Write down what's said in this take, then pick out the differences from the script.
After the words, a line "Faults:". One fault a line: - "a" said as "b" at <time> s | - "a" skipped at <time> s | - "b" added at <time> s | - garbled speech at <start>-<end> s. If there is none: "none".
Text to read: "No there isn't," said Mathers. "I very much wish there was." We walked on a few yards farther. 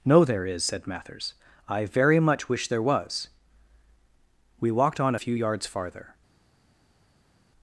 "No there is," said Mathers. "I very much wish there was." We walked on a few yards farther.
Faults:
- "isn't" said as "is" at 0.5 s